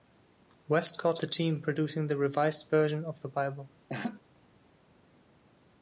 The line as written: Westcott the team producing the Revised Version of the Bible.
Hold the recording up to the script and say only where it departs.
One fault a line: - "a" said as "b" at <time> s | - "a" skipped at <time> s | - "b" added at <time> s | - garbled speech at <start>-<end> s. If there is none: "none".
none